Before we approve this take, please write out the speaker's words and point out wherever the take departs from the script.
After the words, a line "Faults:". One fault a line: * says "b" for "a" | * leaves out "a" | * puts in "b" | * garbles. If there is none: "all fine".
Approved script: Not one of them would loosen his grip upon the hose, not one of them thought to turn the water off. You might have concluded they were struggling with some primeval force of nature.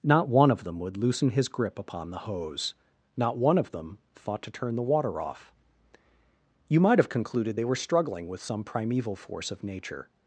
Not one of them would loosen his grip upon the hose, not one of them thought to turn the water off. You might have concluded they were struggling with some primeval force of nature.
Faults:
all fine